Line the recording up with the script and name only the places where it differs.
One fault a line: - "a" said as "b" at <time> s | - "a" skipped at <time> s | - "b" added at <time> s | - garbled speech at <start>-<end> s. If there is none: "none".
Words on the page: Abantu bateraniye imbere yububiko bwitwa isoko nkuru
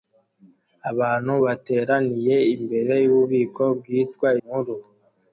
- "isoko" skipped at 4.3 s